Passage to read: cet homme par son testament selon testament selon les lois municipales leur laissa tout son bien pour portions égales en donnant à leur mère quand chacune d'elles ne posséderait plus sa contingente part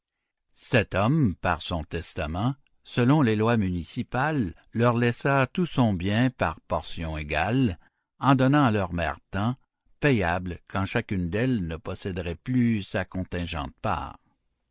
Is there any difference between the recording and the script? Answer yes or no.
yes